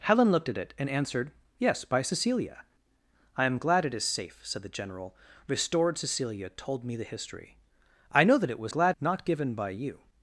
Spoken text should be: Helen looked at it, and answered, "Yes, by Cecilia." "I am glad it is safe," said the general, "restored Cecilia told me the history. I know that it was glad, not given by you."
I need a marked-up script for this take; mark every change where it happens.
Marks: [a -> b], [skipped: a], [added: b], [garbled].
Helen looked at it, and answered, "Yes, by Cecilia." "I am glad it is safe," said the general, "restored Cecilia told me the history. I know that it was glad, not given by you."